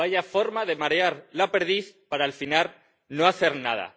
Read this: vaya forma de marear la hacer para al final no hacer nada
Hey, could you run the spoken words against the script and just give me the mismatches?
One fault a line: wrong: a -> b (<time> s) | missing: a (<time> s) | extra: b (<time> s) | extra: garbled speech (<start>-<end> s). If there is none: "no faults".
wrong: hacer -> perdiz (1.5 s)